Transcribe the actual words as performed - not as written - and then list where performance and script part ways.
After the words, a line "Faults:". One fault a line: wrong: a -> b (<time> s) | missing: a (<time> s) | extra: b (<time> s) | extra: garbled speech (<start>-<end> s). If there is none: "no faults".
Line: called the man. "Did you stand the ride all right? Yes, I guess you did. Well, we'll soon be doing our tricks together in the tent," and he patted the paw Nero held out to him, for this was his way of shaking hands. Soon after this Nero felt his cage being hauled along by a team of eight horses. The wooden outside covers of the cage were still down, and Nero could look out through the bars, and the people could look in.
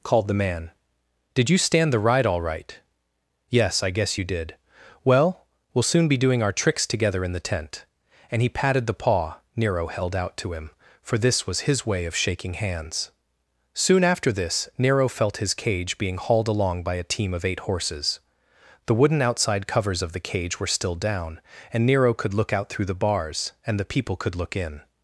called the man. "Did you stand the ride all right? Yes, I guess you did. Well, we'll soon be doing our tricks together in the tent," and he patted the paw Nero held out to him, for this was his way of shaking hands. Soon after this Nero felt his cage being hauled along by a team of eight horses. The wooden outside covers of the cage were still down, and Nero could look out through the bars, and the people could look in.
Faults:
no faults